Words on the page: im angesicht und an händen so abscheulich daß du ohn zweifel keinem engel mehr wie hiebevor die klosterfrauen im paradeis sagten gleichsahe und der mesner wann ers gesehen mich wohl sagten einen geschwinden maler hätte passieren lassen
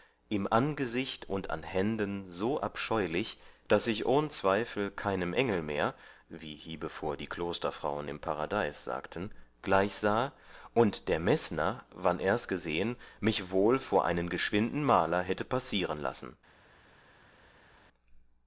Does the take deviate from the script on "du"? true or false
true